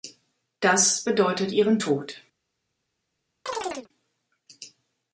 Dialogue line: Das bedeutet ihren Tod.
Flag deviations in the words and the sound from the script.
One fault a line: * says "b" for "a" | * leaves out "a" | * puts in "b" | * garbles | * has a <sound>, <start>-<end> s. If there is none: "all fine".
* has a chirp, 3.5-3.9 s